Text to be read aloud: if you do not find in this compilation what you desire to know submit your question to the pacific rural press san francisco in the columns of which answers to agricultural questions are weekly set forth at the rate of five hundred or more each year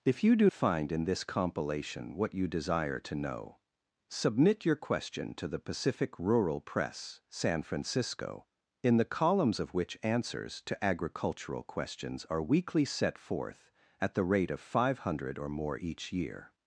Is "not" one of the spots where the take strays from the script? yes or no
yes